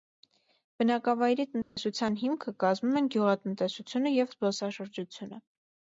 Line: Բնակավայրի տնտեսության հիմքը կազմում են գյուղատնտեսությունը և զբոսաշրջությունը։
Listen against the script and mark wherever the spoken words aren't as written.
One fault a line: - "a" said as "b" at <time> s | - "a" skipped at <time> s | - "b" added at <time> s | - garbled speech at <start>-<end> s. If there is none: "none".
none